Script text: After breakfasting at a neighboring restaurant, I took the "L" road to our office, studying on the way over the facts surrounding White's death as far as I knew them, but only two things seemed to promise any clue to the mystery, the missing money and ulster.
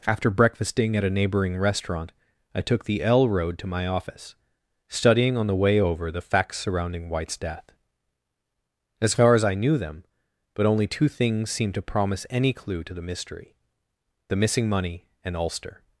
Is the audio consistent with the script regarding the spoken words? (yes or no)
no